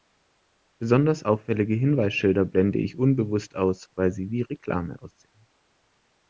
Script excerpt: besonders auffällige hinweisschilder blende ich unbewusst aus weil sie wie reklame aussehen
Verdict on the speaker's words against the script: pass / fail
pass